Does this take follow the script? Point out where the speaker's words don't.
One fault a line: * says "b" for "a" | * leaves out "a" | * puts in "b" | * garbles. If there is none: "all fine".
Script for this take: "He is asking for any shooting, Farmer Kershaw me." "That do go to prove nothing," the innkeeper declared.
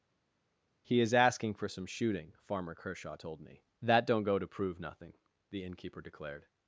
* says "some" for "any"
* puts in "told"
* says "don't" for "do"